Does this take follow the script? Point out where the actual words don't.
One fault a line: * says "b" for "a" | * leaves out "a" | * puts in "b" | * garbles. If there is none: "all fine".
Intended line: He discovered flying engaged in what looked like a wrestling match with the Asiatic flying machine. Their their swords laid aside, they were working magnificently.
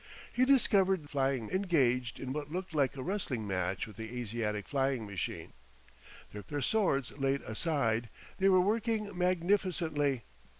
all fine